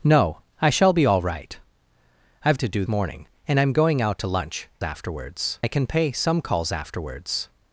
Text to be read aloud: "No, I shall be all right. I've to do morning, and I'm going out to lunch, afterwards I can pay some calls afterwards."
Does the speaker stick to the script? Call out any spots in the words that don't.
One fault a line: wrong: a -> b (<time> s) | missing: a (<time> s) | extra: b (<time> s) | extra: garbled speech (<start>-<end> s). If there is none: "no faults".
no faults